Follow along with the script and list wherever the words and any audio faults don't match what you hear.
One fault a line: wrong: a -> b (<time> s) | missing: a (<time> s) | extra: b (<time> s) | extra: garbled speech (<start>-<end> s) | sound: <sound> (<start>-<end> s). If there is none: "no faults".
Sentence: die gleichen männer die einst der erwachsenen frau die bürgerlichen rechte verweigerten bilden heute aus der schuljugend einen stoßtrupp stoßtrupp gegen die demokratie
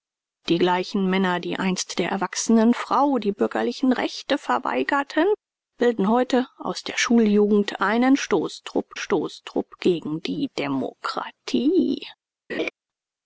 sound: laugh (12.5-12.7 s)